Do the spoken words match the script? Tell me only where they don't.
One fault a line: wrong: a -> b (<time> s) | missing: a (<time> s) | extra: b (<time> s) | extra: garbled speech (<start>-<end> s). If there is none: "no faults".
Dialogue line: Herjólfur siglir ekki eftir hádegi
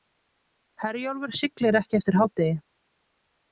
no faults